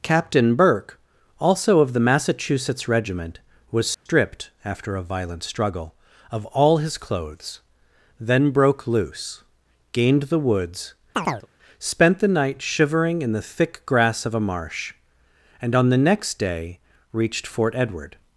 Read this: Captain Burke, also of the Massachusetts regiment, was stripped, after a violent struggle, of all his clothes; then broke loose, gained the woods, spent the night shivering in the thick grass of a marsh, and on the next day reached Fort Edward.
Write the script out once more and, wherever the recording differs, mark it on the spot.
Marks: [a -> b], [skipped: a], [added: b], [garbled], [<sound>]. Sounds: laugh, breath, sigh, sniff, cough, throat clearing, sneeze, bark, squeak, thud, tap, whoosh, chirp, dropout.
Captain Burke, also of the Massachusetts regiment, was stripped, [dropout] after a violent struggle, of all his clothes; then broke loose, gained the woods, [chirp] spent the night shivering in the thick grass of a marsh, and on the next day reached Fort Edward.